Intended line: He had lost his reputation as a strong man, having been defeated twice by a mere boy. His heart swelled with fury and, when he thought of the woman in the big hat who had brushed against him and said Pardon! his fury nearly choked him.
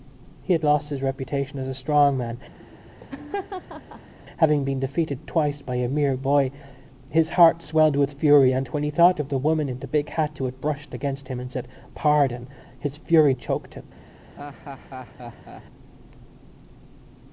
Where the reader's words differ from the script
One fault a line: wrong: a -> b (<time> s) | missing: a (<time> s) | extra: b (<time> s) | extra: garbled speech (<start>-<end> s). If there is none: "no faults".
missing: nearly (13.3 s)